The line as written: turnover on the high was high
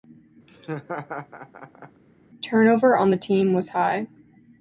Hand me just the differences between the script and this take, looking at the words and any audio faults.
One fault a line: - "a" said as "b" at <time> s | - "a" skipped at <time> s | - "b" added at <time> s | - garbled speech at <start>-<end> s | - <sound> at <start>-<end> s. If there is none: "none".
- laugh at 0.5-2.0 s
- "high" said as "team" at 3.2 s